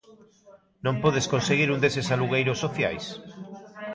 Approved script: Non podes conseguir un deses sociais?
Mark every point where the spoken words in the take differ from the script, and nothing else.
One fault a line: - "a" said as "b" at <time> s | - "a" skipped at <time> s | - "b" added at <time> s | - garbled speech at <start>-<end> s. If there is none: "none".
- "alugueiros" added at 2.1 s